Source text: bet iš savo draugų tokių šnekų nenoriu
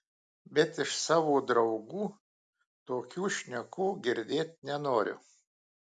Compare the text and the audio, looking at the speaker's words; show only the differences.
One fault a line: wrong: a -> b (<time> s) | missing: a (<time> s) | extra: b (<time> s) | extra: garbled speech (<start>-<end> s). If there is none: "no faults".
extra: girdėt (4.1 s)